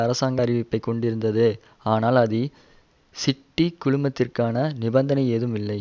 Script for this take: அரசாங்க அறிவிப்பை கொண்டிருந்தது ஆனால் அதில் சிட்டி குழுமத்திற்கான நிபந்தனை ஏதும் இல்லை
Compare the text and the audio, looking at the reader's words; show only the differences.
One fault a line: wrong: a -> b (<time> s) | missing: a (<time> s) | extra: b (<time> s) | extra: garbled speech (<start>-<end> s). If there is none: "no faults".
no faults